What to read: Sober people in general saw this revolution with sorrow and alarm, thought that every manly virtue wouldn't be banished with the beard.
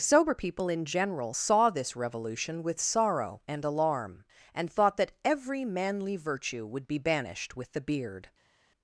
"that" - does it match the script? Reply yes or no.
yes